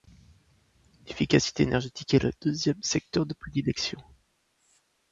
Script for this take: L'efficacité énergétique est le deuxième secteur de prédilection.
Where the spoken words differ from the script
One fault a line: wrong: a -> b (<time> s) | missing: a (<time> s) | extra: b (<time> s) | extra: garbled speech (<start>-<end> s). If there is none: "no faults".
no faults